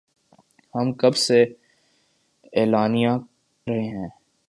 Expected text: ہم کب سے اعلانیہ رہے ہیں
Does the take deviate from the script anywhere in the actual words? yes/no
no